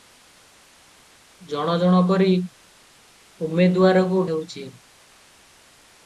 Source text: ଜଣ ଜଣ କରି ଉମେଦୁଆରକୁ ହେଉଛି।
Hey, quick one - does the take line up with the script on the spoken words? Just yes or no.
yes